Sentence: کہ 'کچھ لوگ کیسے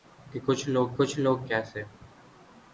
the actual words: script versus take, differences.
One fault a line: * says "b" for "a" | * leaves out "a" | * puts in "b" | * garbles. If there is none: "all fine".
* puts in "کچھ لوگ"